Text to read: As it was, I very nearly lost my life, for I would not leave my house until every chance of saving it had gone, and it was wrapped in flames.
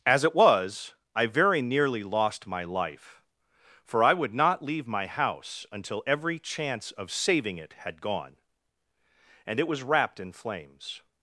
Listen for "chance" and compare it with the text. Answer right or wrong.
right